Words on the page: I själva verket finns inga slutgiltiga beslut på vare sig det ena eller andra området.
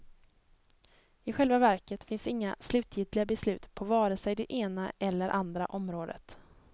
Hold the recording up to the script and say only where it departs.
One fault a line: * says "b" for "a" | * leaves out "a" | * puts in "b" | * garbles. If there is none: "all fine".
all fine